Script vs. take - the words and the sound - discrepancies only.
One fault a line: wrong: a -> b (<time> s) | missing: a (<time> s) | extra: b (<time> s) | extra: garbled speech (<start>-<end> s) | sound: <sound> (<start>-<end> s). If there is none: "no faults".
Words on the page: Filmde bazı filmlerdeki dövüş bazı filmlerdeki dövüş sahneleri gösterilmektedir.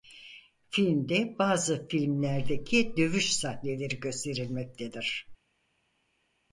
missing: bazı filmlerdeki dövüş (3.3 s)